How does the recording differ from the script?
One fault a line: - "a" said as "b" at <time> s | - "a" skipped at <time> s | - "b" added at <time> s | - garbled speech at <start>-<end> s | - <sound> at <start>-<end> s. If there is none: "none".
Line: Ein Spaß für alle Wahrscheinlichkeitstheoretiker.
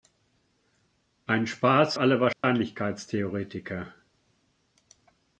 - "für" skipped at 1.9 s
- dropout at 2.3-2.4 s